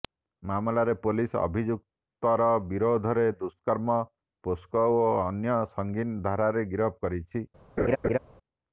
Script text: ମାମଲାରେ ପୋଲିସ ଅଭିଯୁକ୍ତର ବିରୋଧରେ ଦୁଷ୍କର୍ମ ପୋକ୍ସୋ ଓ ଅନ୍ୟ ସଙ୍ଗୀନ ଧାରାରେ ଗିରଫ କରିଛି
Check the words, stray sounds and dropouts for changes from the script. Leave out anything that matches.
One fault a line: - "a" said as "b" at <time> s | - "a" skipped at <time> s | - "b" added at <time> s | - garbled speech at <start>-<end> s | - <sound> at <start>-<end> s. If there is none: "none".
- laugh at 7.8-8.2 s